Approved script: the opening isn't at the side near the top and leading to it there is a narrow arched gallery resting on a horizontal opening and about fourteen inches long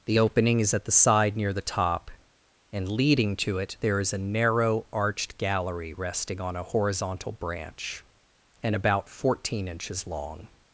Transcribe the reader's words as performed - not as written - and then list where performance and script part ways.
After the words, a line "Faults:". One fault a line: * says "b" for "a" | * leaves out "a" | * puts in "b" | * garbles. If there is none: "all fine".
the opening is at the side near the top and leading to it there is a narrow arched gallery resting on a horizontal branch and about fourteen inches long
Faults:
* says "is" for "isn't"
* says "branch" for "opening"